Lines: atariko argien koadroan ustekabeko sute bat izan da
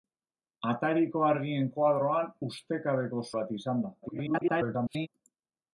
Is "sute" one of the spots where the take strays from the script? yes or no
yes